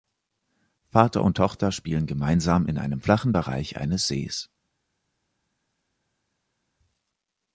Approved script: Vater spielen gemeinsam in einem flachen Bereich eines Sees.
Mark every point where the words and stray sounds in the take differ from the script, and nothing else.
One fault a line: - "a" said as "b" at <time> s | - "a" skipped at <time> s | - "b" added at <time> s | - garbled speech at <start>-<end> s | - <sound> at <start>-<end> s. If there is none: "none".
- "und Tochter" added at 1.2 s